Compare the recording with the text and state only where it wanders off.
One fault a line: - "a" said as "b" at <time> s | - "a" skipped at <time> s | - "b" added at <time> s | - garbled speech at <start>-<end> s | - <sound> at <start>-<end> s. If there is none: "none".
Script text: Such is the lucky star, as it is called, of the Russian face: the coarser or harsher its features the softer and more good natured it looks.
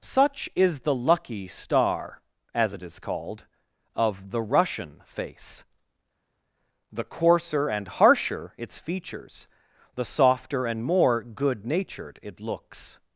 - "or" said as "and" at 7.7 s